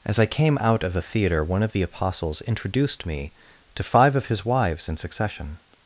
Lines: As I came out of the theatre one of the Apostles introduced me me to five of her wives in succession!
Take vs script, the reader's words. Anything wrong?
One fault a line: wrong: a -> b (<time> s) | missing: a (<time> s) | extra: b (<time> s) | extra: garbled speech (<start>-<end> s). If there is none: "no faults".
missing: me (3.3 s)
wrong: her -> his (4.3 s)